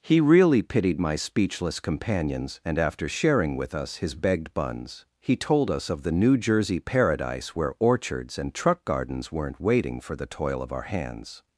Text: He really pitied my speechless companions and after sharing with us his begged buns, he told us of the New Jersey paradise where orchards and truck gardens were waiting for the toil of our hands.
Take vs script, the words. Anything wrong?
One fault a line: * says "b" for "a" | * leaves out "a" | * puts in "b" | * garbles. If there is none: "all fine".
* says "weren't" for "were"